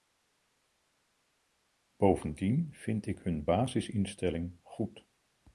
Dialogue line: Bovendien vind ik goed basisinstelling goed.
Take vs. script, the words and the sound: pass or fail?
fail